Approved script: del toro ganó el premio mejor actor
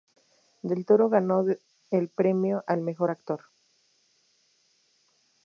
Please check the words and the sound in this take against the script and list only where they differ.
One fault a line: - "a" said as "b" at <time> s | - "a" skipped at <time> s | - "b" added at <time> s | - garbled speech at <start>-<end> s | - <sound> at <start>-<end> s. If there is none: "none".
- "al" added at 2.6 s